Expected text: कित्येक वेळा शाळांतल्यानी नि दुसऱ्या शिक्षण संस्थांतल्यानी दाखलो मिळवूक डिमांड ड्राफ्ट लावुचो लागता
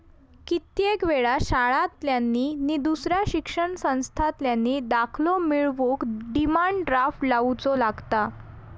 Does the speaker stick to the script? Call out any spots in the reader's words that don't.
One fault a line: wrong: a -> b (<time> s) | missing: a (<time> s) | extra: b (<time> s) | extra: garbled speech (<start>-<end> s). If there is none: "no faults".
no faults